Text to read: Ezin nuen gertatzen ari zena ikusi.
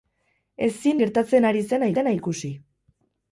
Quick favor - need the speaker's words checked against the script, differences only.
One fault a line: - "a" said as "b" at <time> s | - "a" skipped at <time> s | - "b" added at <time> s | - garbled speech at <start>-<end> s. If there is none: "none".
- "nuen" skipped at 1.0 s
- "zena" added at 2.0 s